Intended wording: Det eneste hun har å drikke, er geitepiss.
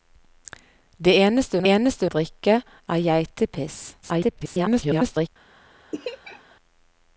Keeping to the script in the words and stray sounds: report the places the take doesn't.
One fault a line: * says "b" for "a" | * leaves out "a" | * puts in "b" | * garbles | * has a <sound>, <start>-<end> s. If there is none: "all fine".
* says "eneste" for "har"
* garbles
* has a laugh, 5.9-6.6 s